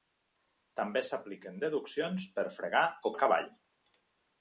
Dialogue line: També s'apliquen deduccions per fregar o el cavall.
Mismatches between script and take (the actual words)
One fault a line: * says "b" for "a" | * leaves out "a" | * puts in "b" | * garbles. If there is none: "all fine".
all fine